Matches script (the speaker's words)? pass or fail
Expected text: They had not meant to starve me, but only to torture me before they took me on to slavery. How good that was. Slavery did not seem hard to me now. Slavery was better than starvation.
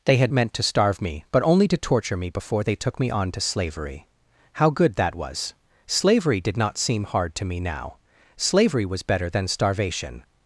fail